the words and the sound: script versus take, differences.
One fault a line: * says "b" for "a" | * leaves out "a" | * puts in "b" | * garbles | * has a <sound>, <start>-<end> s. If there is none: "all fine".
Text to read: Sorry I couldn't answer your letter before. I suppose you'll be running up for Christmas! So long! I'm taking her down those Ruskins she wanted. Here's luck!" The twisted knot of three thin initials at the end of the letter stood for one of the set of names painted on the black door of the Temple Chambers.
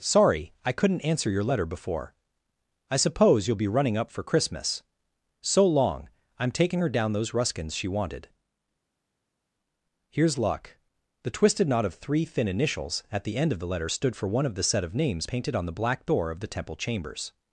all fine